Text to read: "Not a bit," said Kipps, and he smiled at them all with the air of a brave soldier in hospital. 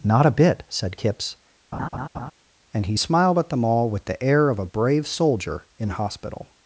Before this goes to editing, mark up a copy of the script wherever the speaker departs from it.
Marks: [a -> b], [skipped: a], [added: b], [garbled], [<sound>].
"Not a bit," said Kipps, [laugh] and he smiled at them all with the air of a brave soldier in hospital.